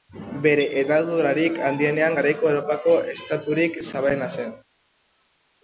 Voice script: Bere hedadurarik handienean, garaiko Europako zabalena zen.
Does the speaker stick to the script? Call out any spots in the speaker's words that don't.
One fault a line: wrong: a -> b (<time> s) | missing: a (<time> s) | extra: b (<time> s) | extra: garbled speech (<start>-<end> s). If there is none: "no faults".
extra: estaturik (3.2 s)